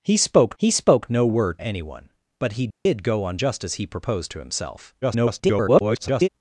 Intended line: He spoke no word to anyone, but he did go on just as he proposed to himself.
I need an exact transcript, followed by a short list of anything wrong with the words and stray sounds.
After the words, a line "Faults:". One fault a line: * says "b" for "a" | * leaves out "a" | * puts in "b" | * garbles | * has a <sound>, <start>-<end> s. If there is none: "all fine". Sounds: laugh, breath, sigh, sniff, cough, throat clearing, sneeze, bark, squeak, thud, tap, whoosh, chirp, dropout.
He spoke he spoke no word anyone, but he did go on just as he proposed to himself. [garbled]
Faults:
* puts in "he spoke"
* leaves out "to"
* has a dropout, 2.7-2.9 s
* garbles